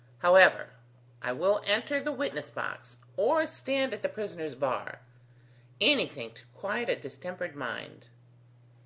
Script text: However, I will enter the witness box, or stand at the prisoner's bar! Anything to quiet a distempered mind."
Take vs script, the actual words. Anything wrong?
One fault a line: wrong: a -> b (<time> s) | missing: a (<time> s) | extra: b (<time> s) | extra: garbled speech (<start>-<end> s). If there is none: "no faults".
no faults